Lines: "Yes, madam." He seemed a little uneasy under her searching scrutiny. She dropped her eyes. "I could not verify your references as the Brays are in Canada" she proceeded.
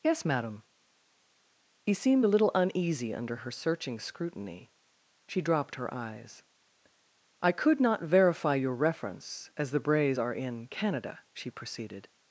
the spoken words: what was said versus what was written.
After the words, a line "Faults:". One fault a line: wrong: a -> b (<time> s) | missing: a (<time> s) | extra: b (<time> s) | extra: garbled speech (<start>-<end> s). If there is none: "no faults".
"Yes, madam." He seemed a little uneasy under her searching scrutiny. She dropped her eyes. "I could not verify your reference as the Brays are in Canada" she proceeded.
Faults:
wrong: references -> reference (8.7 s)